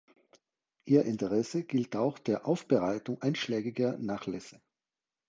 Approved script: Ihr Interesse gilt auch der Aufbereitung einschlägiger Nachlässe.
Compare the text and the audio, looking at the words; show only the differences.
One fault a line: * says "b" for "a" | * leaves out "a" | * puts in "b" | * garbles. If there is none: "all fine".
all fine